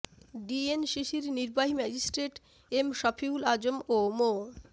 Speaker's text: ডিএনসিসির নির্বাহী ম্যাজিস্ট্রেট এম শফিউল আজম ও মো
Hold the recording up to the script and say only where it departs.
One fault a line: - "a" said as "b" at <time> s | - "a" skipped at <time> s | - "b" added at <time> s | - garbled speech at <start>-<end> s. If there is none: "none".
none